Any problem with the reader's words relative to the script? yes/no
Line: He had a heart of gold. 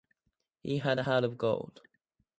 no